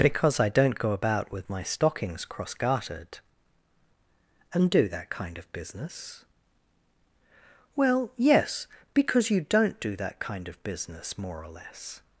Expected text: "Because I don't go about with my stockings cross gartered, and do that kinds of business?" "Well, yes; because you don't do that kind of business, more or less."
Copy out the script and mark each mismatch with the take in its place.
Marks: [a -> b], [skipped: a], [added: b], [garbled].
"Because I don't go about with my stockings cross gartered, and do that [kinds -> kind] of business?" "Well, yes; because you don't do that kind of business, more or less."